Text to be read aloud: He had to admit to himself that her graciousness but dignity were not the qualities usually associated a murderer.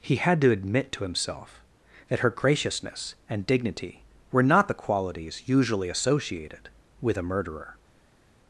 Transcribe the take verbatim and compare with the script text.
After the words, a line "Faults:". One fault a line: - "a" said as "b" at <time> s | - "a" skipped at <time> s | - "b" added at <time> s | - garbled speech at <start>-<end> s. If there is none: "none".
He had to admit to himself that her graciousness and dignity were not the qualities usually associated with a murderer.
Faults:
- "but" said as "and" at 3.3 s
- "with" added at 7.0 s